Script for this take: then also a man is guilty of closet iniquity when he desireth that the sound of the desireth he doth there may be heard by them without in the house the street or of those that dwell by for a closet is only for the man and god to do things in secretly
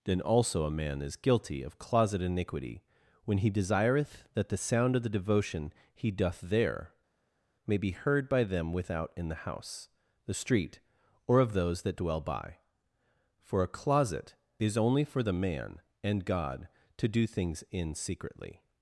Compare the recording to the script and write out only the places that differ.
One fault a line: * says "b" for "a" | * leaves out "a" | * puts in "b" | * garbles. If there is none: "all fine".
* says "devotion" for "desireth"